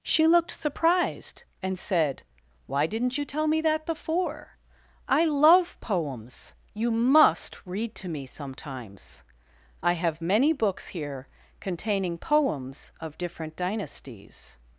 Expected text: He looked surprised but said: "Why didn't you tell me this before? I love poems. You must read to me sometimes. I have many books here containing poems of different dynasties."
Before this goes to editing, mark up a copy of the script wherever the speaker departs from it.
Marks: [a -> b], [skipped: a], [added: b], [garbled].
[He -> She] looked surprised [but -> and] said: "Why didn't you tell me [this -> that] before? I love poems. You must read to me sometimes. I have many books here containing poems of different dynasties."